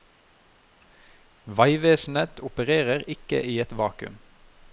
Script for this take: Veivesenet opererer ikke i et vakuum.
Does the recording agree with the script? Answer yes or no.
yes